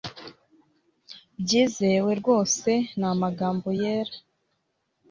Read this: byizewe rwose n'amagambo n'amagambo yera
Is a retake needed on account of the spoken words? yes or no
yes